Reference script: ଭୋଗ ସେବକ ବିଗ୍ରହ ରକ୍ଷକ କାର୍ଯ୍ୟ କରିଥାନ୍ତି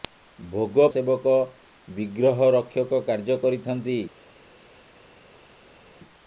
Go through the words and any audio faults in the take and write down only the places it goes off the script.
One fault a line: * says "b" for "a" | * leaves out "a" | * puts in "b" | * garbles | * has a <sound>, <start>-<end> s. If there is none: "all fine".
all fine